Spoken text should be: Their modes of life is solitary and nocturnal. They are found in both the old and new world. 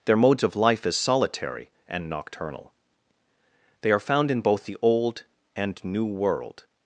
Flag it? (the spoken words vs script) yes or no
no